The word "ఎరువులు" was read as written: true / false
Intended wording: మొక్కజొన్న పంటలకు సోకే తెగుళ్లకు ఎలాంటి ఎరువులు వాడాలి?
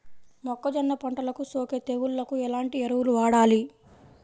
true